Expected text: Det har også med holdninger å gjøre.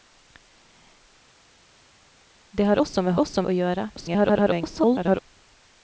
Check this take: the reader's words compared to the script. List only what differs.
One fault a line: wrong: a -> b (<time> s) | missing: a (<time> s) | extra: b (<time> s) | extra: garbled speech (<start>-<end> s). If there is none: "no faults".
wrong: holdninger -> også (3.2 s)
extra: garbled speech (4.0-5.2 s)